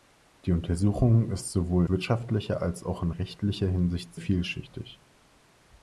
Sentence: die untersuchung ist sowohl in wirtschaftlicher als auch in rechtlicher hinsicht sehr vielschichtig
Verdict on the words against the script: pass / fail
fail